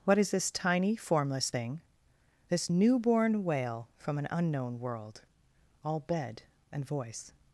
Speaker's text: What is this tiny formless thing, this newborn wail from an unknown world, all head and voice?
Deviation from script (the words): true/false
true